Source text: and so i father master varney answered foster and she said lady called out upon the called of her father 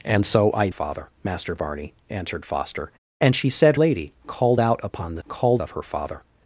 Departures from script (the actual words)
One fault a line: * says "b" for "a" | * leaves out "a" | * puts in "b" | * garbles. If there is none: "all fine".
all fine